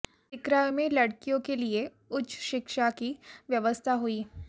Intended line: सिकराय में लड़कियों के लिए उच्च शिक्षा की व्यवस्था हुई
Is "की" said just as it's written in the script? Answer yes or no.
yes